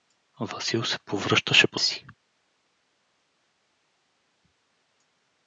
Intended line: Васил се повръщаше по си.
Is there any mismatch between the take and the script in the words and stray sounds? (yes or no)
no